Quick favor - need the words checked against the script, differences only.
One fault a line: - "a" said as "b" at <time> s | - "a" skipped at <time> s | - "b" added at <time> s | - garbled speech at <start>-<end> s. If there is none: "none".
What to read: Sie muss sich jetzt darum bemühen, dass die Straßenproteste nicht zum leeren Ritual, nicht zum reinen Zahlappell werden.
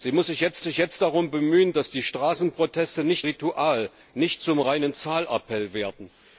- "sich jetzt" added at 0.6 s
- "zum leeren" skipped at 3.3 s